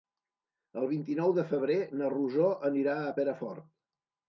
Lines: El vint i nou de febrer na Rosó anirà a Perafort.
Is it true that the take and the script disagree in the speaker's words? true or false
false